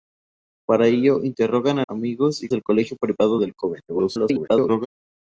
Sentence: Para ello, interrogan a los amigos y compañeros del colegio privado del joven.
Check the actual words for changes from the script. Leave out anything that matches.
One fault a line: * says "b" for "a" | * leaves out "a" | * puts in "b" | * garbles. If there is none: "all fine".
* leaves out "los"
* leaves out "compañeros"
* garbles